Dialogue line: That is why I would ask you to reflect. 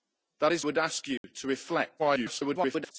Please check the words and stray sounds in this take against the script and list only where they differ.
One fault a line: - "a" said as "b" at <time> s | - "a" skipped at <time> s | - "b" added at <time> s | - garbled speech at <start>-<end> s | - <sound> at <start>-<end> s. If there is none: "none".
- "why I" skipped at 0.7 s
- dropout at 1.2-1.2 s
- garbled speech at 2.0-2.9 s